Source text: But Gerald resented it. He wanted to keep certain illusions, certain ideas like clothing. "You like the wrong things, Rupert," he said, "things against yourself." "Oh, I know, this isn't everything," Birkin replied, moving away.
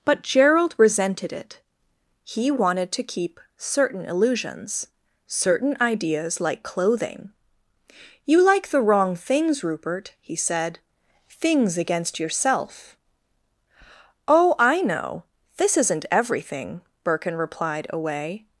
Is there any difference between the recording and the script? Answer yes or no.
yes